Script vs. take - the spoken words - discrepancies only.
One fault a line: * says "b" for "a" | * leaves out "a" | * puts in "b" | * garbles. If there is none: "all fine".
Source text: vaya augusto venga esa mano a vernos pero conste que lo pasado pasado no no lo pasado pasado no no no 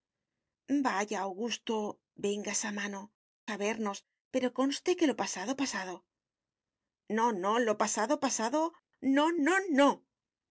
all fine